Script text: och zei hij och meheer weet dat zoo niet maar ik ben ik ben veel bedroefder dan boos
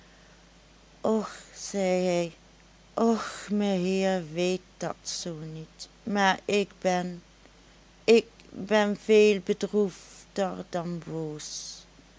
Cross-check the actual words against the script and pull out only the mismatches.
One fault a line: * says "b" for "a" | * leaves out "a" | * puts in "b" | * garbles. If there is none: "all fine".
all fine